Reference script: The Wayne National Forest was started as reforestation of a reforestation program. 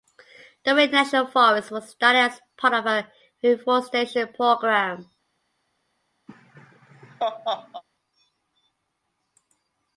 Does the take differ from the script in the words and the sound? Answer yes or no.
yes